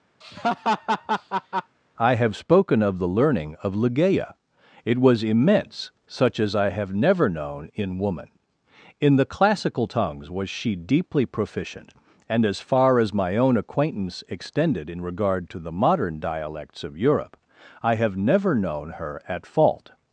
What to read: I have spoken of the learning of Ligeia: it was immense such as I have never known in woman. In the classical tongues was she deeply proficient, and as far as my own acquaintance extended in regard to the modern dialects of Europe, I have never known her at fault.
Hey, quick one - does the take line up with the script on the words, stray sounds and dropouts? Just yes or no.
no